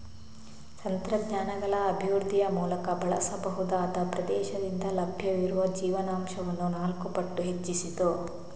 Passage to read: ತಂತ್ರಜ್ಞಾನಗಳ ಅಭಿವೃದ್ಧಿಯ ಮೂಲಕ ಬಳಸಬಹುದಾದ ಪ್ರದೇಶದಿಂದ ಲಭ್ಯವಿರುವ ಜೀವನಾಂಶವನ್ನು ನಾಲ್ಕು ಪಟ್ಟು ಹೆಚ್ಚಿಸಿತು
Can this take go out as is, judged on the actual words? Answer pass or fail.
pass